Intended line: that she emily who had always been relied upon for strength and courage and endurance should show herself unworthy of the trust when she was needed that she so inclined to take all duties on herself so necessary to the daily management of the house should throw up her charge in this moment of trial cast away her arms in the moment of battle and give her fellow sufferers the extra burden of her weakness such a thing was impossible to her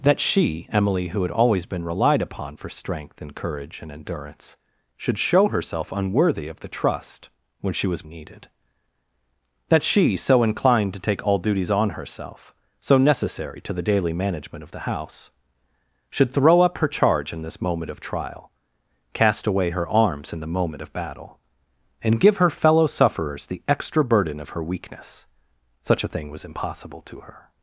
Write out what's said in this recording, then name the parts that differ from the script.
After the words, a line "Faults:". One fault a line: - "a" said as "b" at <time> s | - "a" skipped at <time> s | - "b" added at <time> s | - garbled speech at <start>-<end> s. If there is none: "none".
that she emily who had always been relied upon for strength and courage and endurance should show herself unworthy of the trust when she was needed that she so inclined to take all duties on herself so necessary to the daily management of the house should throw up her charge in this moment of trial cast away her arms in the moment of battle and give her fellow sufferers the extra burden of her weakness such a thing was impossible to her
Faults:
none